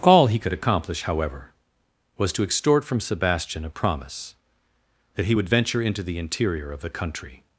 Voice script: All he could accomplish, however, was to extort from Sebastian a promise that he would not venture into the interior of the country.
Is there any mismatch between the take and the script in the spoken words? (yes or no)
yes